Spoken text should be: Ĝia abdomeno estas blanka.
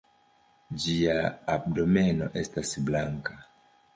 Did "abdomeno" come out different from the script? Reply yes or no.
no